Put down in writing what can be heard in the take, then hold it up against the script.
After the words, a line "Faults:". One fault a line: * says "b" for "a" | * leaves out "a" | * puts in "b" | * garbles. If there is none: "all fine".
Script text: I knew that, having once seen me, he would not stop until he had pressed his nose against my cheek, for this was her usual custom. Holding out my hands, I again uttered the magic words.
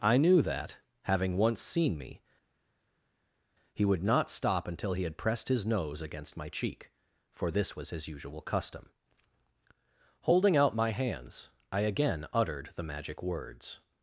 I knew that, having once seen me, he would not stop until he had pressed his nose against my cheek, for this was his usual custom. Holding out my hands, I again uttered the magic words.
Faults:
* says "his" for "her"